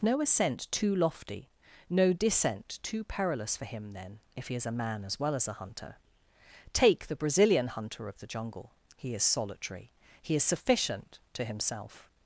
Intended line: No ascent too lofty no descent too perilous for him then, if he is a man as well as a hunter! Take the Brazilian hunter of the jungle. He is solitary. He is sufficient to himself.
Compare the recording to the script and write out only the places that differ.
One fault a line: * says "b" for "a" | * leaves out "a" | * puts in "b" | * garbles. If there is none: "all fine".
all fine